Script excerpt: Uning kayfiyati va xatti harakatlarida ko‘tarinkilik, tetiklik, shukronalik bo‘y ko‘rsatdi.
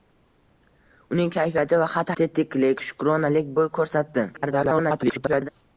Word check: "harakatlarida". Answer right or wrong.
wrong